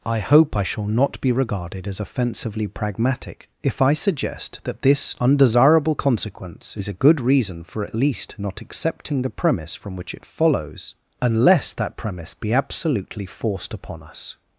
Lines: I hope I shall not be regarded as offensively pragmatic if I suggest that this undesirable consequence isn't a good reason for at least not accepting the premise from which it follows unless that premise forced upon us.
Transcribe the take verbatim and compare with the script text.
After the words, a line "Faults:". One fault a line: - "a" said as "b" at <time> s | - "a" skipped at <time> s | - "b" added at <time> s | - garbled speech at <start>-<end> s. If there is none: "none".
I hope I shall not be regarded as offensively pragmatic if I suggest that this undesirable consequence is a good reason for at least not accepting the premise from which it follows unless that premise be absolutely forced upon us.
Faults:
- "isn't" said as "is" at 6.8 s
- "be absolutely" added at 12.3 s